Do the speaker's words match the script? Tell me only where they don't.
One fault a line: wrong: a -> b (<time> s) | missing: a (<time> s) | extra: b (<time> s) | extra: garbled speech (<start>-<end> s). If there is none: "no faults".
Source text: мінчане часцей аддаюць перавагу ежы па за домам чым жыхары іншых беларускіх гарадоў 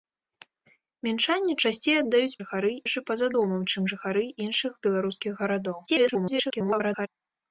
wrong: перавагу -> жыхары (2.4 s)
extra: garbled speech (5.9-7.1 s)